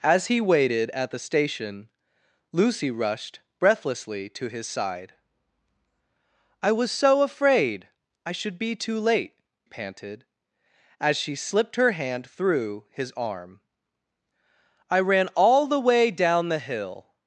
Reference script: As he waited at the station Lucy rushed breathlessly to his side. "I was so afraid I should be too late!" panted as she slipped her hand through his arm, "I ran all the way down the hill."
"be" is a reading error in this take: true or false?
false